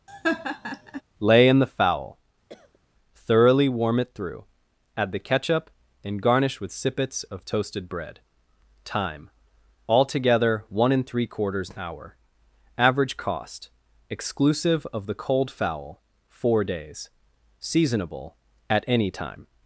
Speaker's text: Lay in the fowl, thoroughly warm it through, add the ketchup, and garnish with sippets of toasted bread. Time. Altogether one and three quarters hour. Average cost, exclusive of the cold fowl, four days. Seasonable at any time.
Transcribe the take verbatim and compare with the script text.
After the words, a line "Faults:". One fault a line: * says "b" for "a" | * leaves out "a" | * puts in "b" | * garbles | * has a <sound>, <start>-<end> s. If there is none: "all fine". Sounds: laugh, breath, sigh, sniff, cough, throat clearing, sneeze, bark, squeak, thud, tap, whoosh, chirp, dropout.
Lay in the fowl, thoroughly warm it through, add the ketchup, and garnish with sippets of toasted bread. Time. Altogether one and three quarters hour. Average cost, exclusive of the cold fowl, four days. Seasonable at any time.
Faults:
* has a laugh, 0.1-1.0 s
* has a cough, 2.5-2.8 s